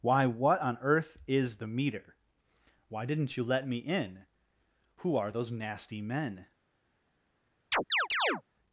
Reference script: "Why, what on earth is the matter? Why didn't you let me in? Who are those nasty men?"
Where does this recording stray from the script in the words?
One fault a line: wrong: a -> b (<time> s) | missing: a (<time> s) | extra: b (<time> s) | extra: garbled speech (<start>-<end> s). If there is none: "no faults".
wrong: matter -> meter (1.7 s)